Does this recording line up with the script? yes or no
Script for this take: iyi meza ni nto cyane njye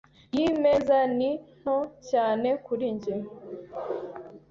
no